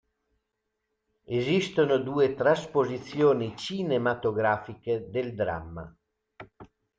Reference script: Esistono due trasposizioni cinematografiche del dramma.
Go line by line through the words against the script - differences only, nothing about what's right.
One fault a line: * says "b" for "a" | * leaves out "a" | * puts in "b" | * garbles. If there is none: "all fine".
all fine